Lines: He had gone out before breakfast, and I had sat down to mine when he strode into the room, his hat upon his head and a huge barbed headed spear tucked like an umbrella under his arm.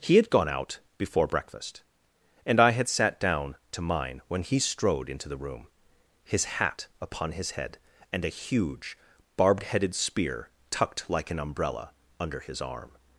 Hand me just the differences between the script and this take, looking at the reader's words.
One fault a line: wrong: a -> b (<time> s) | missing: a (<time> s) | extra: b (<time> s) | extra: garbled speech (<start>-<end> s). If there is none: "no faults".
no faults